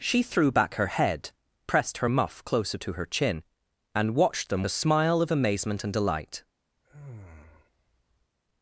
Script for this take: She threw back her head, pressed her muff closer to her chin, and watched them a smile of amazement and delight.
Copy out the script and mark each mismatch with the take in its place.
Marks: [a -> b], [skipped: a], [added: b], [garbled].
She threw back her head, pressed her muff closer to her chin, and watched them a smile of amazement and delight.